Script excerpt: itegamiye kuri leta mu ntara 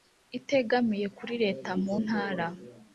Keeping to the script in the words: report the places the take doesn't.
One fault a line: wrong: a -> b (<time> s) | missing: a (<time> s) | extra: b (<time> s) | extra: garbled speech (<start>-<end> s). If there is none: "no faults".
no faults